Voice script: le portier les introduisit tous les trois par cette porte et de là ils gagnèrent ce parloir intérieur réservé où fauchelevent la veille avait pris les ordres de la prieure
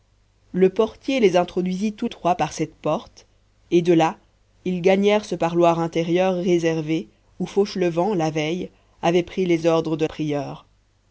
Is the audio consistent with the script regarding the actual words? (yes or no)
no